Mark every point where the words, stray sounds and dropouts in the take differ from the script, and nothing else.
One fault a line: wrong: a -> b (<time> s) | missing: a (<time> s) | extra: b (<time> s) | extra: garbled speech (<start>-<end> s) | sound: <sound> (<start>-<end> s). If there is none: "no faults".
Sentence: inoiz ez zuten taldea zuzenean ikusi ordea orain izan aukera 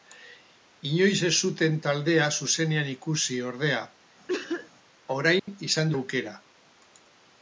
sound: cough (4.3-4.7 s)
sound: dropout (5.4-5.5 s)